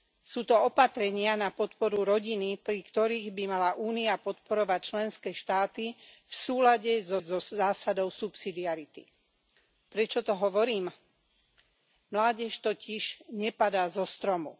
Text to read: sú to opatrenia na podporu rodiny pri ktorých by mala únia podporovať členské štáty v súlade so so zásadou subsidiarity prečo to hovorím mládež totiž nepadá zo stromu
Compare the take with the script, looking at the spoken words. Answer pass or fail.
pass